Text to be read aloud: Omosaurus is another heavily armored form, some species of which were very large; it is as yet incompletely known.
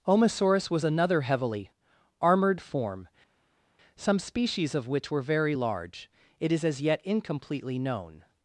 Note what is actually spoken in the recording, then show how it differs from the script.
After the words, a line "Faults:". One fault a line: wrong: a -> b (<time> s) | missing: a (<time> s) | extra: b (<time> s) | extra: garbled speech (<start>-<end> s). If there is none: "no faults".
Omosaurus was another heavily armored form, some species of which were very large; it is as yet incompletely known.
Faults:
wrong: is -> was (0.7 s)